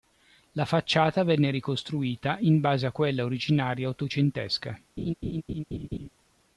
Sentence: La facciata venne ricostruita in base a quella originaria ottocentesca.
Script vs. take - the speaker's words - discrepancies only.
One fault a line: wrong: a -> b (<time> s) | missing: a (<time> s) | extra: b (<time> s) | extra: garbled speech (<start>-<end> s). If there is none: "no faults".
no faults